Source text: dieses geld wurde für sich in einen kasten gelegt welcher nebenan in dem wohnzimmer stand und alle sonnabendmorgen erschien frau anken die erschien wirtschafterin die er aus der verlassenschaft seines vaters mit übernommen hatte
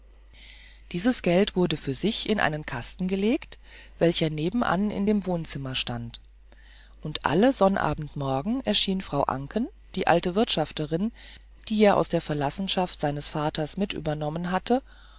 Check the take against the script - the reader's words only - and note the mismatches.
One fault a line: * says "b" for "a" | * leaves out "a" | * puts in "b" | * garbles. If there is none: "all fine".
* says "alte" for "erschien"